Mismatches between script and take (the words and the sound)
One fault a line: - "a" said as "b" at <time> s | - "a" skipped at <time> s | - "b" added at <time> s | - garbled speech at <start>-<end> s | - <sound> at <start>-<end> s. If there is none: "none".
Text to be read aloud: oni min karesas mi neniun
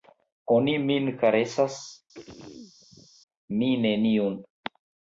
- throat clearing at 2.1-3.1 s